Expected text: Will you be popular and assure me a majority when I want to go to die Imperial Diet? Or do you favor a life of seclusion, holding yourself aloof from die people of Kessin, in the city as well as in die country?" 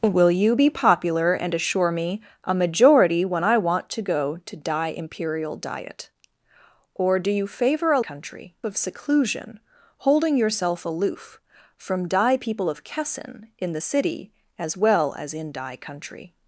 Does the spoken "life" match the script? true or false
false